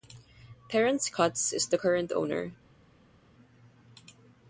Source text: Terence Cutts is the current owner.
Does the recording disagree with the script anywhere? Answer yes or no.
no